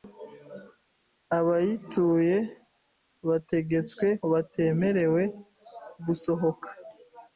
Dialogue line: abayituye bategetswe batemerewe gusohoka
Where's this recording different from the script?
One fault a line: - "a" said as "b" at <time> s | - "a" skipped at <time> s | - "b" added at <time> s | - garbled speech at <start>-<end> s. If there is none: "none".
none